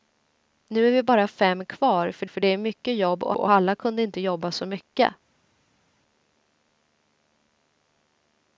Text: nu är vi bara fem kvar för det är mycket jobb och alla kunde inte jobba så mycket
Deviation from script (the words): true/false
true